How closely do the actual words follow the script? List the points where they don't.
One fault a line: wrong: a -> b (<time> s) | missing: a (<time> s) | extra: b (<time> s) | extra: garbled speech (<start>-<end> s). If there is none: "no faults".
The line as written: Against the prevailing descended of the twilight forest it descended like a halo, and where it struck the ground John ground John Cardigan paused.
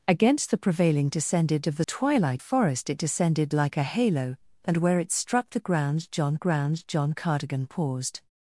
no faults